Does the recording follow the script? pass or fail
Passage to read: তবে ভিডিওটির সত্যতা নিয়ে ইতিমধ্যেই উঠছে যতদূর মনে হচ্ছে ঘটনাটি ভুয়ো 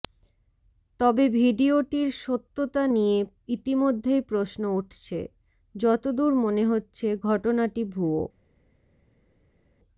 fail